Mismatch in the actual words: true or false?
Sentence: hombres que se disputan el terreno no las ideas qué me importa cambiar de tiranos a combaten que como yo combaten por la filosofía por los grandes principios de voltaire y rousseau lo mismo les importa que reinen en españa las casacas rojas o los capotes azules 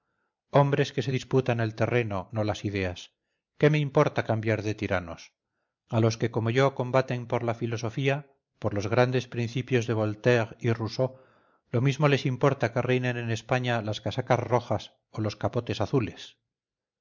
true